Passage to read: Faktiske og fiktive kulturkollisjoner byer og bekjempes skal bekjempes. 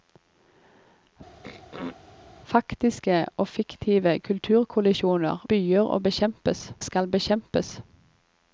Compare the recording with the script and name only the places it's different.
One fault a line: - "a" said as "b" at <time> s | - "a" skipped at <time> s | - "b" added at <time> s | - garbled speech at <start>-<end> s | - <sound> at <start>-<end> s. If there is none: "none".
- throat clearing at 1.4-2.0 s